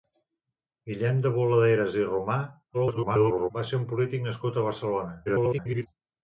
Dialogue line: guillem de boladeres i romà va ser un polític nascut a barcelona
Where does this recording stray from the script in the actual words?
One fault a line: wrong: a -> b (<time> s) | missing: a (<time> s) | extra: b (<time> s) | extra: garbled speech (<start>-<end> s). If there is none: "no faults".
extra: garbled speech (2.7-3.5 s)
extra: garbled speech (5.3-5.9 s)